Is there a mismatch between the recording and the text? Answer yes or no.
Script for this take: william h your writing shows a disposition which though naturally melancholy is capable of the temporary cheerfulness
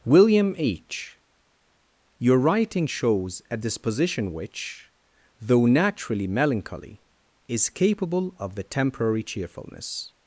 no